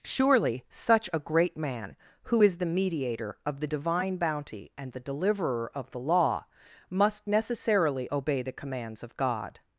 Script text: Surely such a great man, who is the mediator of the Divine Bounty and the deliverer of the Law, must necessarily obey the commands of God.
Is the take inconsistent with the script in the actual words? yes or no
no